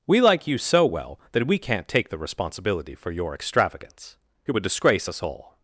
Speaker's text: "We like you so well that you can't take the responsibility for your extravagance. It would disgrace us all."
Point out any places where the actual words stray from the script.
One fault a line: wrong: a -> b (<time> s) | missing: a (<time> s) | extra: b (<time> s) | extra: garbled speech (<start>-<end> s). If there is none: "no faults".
wrong: you -> we (1.4 s)